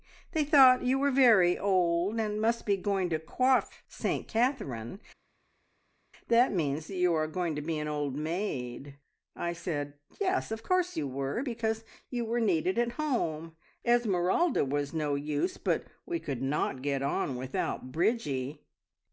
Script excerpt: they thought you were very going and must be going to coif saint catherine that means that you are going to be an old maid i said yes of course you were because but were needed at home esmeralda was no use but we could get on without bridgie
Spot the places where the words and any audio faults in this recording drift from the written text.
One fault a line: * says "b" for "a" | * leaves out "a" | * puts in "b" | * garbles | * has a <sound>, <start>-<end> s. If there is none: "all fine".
* says "old" for "going"
* says "you" for "but"
* puts in "not"